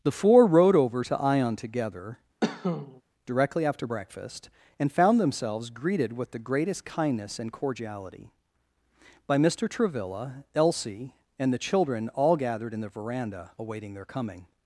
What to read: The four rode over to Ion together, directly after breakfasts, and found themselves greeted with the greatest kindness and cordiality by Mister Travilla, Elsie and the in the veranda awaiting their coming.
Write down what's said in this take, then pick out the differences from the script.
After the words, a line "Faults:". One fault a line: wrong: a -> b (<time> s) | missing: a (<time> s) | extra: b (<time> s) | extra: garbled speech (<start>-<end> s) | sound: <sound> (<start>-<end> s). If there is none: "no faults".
The four rode over to Ion together, directly after breakfast, and found themselves greeted with the greatest kindness and cordiality by Mister Travilla, Elsie and the children, all gathered in the veranda awaiting their coming.
Faults:
sound: cough (2.4-3.0 s)
wrong: breakfasts -> breakfast (3.9 s)
extra: children all gathered (11.6 s)